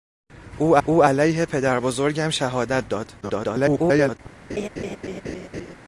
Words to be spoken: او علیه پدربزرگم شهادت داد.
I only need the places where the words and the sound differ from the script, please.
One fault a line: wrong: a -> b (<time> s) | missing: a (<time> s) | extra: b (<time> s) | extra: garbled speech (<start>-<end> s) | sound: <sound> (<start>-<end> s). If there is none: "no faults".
extra: او (0.8 s)
extra: garbled speech (3.2-4.2 s)
sound: laugh (4.5-5.7 s)